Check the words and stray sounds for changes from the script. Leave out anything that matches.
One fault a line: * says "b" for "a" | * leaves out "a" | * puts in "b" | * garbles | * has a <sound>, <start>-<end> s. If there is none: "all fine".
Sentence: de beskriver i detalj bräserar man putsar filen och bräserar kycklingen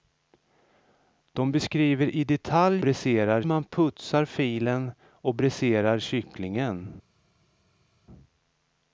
all fine